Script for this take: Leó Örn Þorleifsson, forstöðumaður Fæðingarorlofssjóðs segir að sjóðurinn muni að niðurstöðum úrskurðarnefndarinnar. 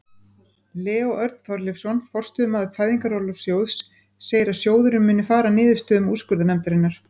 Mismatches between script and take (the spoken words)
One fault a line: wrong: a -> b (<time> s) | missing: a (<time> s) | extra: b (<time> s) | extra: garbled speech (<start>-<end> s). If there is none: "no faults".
extra: fara (5.3 s)